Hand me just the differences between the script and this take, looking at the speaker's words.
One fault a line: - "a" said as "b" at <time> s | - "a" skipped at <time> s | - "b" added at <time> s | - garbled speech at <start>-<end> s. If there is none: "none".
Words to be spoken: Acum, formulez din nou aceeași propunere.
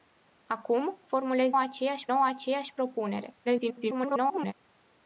- "din" said as "aceeași" at 1.6 s
- garbled speech at 3.5-4.5 s